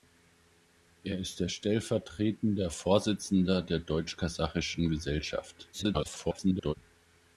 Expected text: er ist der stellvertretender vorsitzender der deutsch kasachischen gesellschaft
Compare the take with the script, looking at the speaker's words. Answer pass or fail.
fail